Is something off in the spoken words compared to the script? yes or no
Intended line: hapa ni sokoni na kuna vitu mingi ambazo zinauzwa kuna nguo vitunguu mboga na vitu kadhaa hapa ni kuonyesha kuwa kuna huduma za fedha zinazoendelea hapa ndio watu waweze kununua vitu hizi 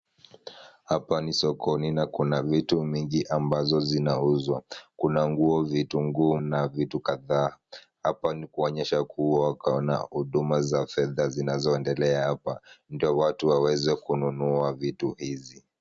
yes